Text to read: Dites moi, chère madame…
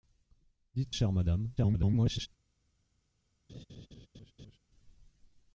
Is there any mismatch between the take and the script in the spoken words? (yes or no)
yes